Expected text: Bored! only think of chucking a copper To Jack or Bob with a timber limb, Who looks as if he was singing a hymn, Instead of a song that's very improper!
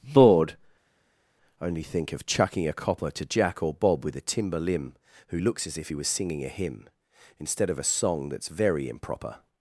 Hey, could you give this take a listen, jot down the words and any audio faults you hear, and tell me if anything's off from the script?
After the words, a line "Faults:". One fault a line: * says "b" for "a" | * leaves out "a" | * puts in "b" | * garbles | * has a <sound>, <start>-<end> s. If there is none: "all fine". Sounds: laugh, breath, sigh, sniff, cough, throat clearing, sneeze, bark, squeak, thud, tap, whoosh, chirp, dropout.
Bored! only think of chucking a copper To Jack or Bob with a timber limb, Who looks as if he was singing a hymn, Instead of a song that's very improper!
Faults:
all fine